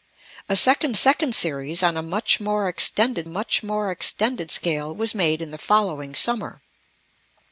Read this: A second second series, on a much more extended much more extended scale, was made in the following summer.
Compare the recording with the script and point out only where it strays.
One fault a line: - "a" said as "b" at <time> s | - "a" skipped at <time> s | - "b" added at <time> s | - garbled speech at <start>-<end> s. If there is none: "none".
none